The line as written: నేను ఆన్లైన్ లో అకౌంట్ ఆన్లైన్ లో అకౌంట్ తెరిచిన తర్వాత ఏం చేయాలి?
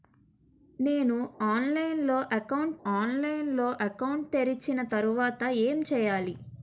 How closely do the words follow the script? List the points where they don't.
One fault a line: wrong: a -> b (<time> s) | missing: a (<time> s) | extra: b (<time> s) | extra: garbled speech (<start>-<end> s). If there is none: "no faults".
no faults